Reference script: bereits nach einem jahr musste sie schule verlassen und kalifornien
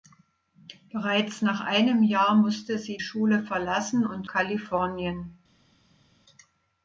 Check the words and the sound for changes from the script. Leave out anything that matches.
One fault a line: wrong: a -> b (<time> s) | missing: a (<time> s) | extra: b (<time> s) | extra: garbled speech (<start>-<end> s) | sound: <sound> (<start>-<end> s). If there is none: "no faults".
no faults